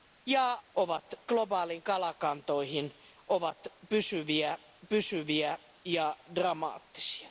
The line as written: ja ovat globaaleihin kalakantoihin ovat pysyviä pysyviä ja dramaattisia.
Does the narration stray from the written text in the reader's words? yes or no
no